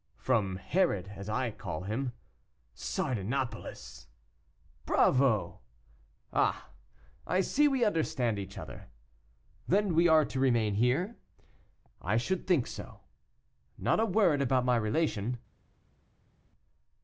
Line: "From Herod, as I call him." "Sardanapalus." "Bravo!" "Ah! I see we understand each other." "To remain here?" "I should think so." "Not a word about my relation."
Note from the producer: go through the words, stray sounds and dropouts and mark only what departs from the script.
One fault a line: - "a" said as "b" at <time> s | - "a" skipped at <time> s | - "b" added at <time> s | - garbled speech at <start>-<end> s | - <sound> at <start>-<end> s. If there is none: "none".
- "Then we are" added at 9.7 s